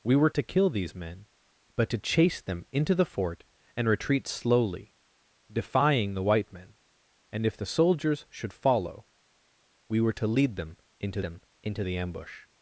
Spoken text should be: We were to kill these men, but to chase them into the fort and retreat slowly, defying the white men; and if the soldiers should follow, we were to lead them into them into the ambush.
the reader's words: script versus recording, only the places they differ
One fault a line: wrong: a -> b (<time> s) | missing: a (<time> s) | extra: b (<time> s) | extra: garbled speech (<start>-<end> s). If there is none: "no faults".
no faults